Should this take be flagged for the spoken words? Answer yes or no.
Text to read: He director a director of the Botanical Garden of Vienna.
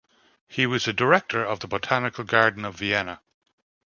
yes